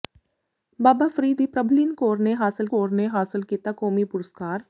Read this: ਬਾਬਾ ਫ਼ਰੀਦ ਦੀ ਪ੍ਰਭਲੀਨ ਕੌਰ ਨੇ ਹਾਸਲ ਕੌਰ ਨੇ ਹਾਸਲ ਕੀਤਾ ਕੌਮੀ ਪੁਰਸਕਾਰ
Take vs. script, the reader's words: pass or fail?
pass